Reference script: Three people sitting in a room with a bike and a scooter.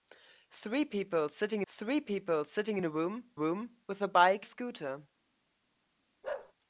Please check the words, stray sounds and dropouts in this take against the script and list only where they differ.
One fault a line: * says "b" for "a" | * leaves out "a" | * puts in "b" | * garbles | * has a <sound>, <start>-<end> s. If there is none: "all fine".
* puts in "three people sitting"
* puts in "room"
* leaves out "and"
* has a bark, 6.2-6.5 s